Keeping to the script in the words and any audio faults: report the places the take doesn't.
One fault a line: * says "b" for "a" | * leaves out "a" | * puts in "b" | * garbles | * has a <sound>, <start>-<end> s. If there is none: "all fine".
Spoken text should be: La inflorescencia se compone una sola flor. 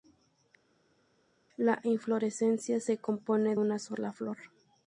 all fine